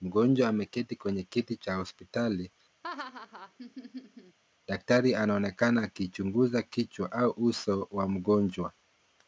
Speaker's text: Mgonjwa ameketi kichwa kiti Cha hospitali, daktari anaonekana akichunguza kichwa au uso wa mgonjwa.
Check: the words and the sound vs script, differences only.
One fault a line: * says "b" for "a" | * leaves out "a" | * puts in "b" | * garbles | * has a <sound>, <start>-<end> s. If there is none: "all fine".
* says "kwenye" for "kichwa"
* has a laugh, 2.8-4.4 s